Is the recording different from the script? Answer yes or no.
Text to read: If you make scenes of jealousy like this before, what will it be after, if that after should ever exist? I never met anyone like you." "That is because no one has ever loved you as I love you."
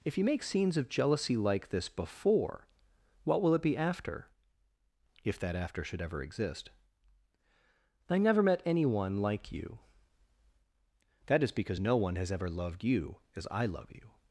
no